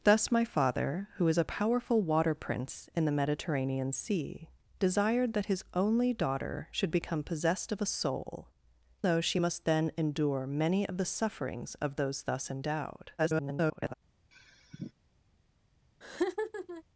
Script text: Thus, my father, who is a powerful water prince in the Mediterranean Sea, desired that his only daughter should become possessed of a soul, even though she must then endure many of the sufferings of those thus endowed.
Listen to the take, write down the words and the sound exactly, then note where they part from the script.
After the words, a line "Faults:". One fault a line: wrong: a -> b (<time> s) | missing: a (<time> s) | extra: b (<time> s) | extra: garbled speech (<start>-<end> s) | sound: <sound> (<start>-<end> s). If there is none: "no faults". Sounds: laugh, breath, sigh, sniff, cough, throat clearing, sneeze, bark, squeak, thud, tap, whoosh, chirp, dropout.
Thus, my father, who is a powerful water prince in the Mediterranean Sea, desired that his only daughter should become possessed of a soul, though she must then endure many of the sufferings of those thus endowed. [garbled]
Faults:
missing: even (8.5 s)
extra: garbled speech (13.2-13.9 s)
sound: sigh (14.3-14.9 s)
sound: laugh (16.0-16.8 s)